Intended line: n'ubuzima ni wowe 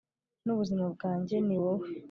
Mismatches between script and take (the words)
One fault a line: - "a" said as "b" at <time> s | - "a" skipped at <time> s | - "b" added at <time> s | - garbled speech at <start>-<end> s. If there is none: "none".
- "bwanjye" added at 0.9 s